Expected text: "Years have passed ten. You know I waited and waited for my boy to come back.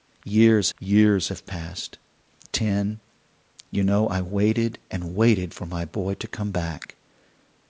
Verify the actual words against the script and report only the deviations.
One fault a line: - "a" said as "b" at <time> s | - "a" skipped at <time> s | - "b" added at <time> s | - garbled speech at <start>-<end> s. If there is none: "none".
- "years" added at 0.8 s